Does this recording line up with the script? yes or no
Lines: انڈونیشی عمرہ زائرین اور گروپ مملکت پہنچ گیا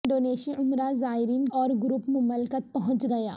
yes